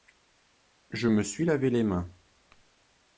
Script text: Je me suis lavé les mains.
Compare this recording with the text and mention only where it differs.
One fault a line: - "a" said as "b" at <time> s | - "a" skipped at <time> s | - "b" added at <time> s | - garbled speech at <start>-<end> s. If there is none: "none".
none